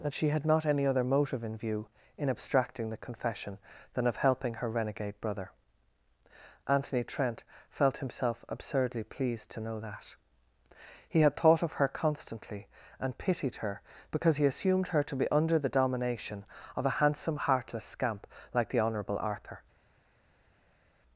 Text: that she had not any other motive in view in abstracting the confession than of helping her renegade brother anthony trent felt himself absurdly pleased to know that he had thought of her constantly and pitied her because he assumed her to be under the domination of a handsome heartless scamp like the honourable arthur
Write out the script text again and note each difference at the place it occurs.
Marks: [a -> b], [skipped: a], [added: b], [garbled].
that she had not any other motive in view in abstracting the confession than of helping her renegade brother anthony trent felt himself absurdly pleased to know that he had thought of her constantly and pitied her because he assumed her to be under the domination of a handsome heartless scamp like the honourable arthur